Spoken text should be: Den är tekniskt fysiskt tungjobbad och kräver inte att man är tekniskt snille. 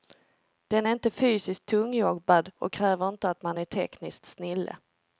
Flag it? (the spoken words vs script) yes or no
yes